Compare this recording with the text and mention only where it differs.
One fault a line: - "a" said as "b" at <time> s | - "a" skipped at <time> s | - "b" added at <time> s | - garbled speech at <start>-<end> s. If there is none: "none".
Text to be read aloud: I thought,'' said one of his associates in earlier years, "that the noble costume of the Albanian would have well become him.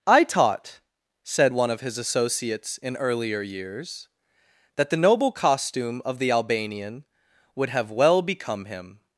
- "thought" said as "taught" at 0.2 s